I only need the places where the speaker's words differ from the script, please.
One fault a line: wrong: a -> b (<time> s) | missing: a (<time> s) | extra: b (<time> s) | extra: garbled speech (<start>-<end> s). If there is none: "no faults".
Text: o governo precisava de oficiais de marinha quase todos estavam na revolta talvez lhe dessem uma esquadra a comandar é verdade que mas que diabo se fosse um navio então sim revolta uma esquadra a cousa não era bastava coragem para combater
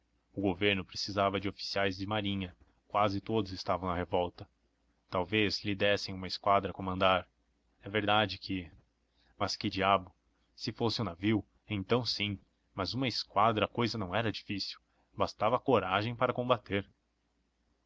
wrong: revolta -> mas (12.7 s)
extra: difícil (14.3 s)